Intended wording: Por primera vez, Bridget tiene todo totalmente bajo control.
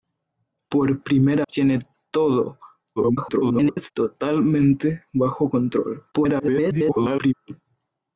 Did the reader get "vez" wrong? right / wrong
wrong